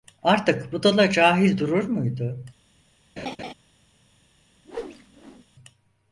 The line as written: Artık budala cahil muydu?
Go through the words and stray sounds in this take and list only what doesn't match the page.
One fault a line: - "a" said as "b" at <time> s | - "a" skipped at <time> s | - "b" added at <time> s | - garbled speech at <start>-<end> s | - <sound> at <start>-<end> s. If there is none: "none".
- "durur" added at 1.6 s
- laugh at 3.2-3.5 s
- whoosh at 4.6-5.5 s